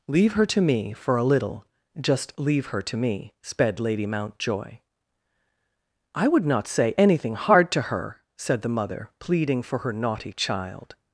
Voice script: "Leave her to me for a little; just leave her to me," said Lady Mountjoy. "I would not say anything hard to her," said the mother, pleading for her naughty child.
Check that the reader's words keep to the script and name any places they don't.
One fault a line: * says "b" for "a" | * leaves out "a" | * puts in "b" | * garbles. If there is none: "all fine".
* says "sped" for "said"